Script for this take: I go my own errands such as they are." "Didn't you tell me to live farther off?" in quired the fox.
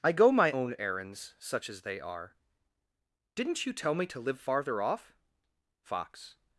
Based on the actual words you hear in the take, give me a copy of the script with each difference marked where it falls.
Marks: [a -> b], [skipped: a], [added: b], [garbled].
I go my own errands such as they are." "Didn't you tell me to live farther off?" [skipped: in quired the] fox.